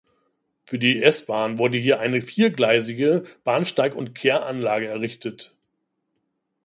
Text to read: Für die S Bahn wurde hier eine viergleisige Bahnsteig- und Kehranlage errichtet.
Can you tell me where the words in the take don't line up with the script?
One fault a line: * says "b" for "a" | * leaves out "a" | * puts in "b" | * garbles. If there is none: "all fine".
all fine